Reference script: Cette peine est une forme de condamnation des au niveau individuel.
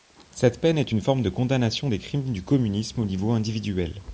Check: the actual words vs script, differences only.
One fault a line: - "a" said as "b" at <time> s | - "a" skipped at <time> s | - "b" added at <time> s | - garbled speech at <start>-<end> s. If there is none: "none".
- "crimes du communisme" added at 2.0 s